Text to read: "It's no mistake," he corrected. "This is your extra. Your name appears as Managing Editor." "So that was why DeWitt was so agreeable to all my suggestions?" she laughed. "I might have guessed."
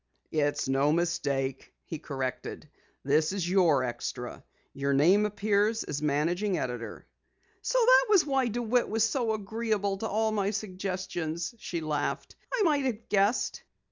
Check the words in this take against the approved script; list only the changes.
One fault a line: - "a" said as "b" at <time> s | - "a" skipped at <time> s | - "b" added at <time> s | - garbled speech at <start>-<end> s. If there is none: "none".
none